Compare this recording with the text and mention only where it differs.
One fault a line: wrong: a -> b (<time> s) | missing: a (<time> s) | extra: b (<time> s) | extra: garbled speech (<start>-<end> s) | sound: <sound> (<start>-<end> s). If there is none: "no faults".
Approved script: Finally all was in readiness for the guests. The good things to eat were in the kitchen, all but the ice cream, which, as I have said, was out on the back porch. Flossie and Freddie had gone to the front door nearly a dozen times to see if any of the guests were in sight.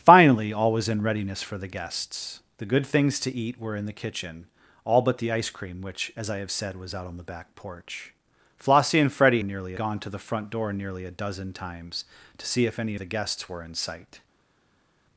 wrong: had -> nearly (9.4 s)
missing: of (12.9 s)